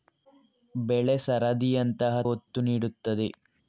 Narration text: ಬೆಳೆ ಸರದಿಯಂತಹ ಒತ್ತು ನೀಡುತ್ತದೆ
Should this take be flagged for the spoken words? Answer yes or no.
no